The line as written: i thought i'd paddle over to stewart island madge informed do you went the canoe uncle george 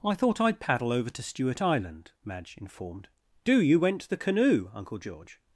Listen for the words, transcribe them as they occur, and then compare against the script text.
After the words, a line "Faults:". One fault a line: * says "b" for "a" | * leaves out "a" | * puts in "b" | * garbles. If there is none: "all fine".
i thought i'd paddle over to stewart island madge informed do you went the canoe uncle george
Faults:
all fine